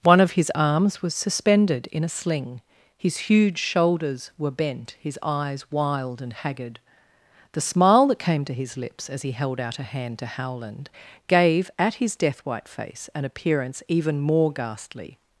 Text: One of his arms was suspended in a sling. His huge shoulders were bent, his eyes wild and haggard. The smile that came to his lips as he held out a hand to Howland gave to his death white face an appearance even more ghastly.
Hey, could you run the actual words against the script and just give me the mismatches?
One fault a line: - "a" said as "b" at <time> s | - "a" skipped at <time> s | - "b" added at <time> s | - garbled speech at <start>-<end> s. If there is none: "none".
- "to" said as "at" at 11.8 s